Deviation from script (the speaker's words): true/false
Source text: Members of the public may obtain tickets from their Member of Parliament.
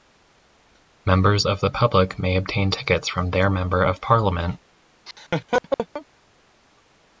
false